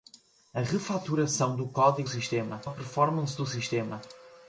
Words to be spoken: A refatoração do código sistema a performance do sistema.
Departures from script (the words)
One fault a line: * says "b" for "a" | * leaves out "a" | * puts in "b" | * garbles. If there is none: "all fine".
all fine